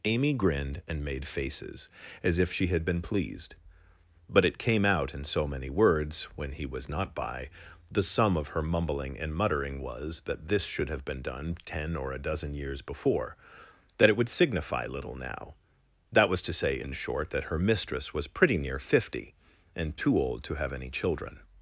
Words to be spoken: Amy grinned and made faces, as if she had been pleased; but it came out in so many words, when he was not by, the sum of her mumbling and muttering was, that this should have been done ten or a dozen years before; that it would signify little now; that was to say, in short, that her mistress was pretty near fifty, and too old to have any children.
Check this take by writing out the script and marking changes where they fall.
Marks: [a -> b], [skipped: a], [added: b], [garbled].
Amy grinned and made faces, as if she had been pleased; but it came out in so many words, when he was not by, the sum of her mumbling and muttering was, that this should have been done ten or a dozen years before; that it would signify little now; that was to say, in short, that her mistress was pretty near fifty, and too old to have any children.